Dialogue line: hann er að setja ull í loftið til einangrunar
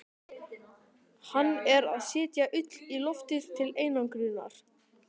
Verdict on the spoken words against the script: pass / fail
pass